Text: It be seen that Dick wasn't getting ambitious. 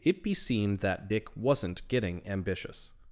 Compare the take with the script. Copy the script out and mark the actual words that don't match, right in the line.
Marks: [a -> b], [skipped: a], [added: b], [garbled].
It be seen that Dick wasn't getting ambitious.